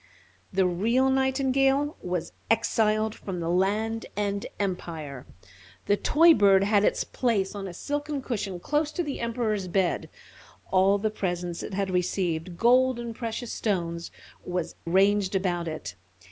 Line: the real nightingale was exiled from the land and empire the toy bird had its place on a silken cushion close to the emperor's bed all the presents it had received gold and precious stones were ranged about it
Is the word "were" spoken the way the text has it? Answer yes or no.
no